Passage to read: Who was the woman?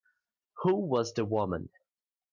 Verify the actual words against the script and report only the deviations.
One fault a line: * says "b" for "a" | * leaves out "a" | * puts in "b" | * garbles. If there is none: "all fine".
all fine